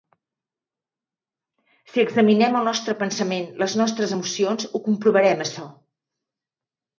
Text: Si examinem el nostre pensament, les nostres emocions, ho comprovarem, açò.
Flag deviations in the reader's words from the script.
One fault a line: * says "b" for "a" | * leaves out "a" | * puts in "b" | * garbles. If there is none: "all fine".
all fine